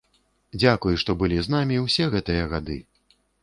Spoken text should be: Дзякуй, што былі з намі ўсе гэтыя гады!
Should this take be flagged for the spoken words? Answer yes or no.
no